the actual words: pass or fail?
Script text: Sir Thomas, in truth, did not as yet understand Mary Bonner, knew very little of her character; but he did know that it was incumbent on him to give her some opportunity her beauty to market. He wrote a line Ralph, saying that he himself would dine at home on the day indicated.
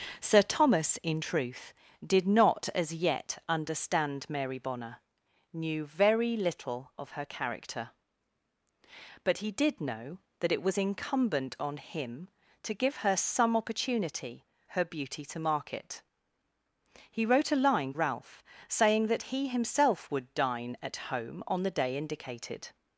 pass